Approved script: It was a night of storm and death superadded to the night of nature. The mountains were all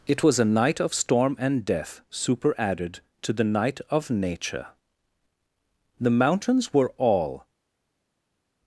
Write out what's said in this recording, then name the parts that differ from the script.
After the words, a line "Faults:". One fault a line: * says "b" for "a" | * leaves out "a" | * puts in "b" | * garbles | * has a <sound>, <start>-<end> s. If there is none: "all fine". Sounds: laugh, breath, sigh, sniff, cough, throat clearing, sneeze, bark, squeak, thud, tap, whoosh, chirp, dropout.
It was a night of storm and death superadded to the night of nature. The mountains were all
Faults:
all fine